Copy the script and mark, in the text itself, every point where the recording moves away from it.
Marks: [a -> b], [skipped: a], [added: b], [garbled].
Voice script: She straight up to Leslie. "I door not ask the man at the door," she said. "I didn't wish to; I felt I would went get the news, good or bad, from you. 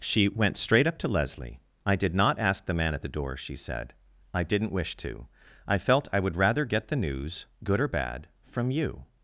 She [added: went] straight up to Leslie. "I [door -> did] not ask the man at the door," she said. "I didn't wish to; I felt I would [went -> rather] get the news, good or bad, from you.